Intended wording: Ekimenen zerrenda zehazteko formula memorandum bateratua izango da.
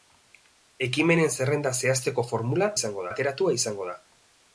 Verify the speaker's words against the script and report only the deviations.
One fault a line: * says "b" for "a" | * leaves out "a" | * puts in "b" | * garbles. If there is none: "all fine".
* says "izango" for "memorandum"